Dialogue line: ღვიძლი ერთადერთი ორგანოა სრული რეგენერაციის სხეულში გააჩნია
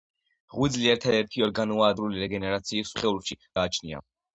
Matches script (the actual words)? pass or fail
pass